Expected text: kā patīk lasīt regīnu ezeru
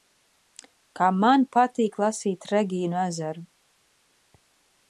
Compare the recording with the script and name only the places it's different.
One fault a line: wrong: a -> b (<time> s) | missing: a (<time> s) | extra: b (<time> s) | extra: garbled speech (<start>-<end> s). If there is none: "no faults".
extra: man (1.2 s)